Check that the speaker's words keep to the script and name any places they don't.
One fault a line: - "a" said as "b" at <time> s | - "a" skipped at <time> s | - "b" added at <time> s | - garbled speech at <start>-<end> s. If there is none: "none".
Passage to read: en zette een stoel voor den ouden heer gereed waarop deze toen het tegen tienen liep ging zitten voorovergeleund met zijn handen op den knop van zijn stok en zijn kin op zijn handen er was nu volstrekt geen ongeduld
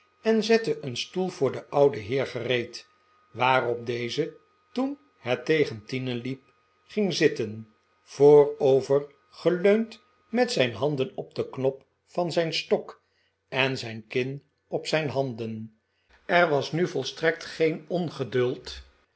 none